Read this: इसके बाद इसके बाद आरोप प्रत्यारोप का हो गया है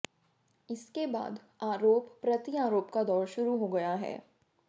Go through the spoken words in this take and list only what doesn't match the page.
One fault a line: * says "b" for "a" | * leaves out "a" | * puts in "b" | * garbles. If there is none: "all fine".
* leaves out "इसके बाद"
* puts in "दौर शुरू"